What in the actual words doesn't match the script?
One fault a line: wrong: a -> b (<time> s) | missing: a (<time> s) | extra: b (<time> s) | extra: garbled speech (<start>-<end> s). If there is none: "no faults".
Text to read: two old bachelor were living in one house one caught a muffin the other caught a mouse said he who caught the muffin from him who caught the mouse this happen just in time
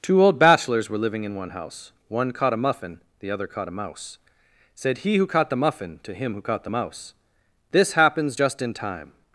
wrong: bachelor -> bachelors (0.4 s)
wrong: from -> to (6.0 s)
wrong: happen -> happens (7.9 s)